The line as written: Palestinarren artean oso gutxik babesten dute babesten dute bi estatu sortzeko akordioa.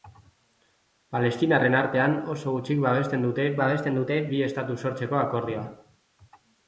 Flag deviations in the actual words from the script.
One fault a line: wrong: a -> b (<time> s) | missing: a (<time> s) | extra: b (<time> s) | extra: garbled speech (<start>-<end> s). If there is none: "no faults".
no faults